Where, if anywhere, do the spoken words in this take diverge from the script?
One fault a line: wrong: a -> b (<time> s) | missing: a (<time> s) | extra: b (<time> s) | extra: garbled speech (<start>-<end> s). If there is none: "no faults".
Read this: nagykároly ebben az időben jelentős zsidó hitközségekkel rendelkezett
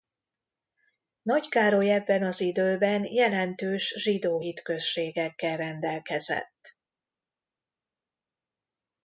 no faults